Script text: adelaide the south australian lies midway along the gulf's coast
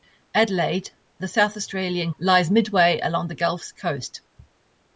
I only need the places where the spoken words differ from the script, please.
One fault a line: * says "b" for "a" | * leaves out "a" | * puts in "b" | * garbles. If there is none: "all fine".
all fine